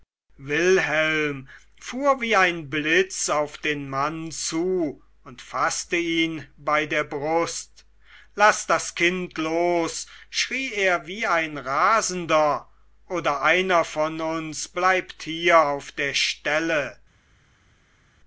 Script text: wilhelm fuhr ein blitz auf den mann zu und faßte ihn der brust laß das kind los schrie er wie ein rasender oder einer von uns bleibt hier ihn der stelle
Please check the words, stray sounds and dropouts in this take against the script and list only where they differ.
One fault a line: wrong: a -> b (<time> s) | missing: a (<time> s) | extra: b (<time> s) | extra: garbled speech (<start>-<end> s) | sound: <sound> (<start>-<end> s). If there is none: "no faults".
extra: wie (2.2 s)
extra: bei (6.6 s)
wrong: ihn -> auf (15.6 s)